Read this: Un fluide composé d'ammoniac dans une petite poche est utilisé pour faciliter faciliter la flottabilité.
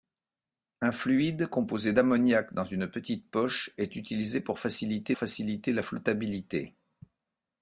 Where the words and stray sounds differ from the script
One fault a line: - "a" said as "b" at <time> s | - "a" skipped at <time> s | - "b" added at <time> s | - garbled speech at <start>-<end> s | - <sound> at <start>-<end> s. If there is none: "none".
none